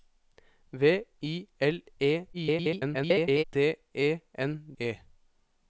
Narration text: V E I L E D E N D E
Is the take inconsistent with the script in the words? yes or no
yes